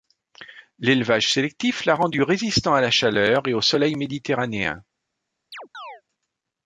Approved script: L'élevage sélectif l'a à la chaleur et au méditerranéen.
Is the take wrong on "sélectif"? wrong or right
right